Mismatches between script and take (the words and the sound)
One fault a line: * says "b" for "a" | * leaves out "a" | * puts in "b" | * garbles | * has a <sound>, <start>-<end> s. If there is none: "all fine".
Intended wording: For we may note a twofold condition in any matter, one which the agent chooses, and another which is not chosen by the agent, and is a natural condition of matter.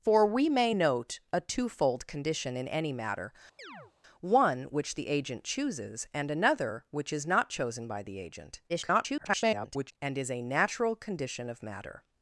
* has a chirp, 3.6-3.9 s
* garbles